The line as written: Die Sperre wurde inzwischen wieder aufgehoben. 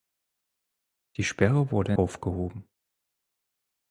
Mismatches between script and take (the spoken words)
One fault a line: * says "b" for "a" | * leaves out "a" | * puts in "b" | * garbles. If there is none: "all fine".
* leaves out "inzwischen wieder"